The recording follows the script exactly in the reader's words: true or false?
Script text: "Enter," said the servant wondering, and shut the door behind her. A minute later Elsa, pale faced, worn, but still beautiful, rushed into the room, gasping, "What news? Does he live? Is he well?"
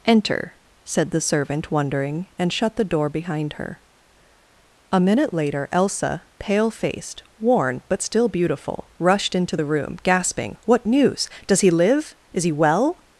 true